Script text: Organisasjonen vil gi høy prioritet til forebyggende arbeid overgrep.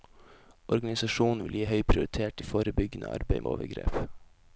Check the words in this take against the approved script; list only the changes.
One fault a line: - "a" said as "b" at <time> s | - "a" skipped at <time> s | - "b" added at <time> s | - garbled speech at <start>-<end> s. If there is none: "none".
none